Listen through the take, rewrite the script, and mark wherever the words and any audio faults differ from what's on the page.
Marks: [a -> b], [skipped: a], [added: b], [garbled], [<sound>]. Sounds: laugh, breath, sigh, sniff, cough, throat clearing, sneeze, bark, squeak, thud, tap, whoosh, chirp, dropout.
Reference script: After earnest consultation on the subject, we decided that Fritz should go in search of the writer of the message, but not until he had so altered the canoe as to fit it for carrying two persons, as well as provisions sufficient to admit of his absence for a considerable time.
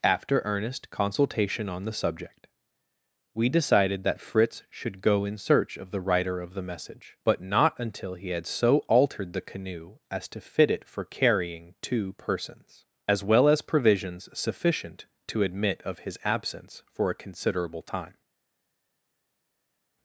After earnest consultation on the subject, we decided that Fritz should go in search of the writer of the message, but not until he had so altered the canoe as to fit it for carrying two persons, as well as provisions sufficient to admit of his absence for a considerable time.